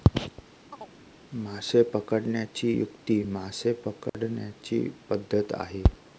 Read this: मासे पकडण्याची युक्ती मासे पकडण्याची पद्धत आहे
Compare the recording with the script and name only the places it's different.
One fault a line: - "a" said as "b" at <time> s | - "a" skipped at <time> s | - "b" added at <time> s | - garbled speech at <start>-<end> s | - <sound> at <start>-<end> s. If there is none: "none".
- chirp at 0.7-1.0 s
- dropout at 4.1-4.1 s